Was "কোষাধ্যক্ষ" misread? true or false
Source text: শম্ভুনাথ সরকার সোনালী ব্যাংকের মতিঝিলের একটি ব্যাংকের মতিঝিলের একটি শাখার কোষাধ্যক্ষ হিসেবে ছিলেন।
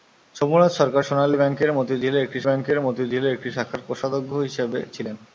false